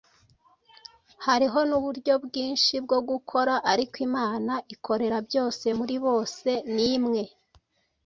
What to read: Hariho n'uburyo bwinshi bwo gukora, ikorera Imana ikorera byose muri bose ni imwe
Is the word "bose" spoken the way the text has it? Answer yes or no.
yes